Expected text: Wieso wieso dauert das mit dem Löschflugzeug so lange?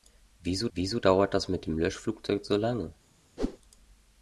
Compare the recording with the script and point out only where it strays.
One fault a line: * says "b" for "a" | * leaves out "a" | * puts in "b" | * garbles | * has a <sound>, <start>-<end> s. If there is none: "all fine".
* has a whoosh, 3.4-3.6 s